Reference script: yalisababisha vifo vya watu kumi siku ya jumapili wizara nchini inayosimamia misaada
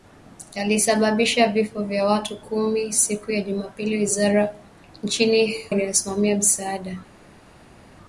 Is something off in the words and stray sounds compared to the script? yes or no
no